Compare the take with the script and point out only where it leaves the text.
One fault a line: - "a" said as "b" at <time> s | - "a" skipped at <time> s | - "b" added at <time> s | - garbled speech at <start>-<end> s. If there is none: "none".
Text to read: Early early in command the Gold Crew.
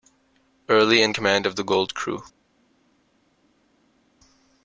- "early" skipped at 1.0 s
- "of" added at 1.4 s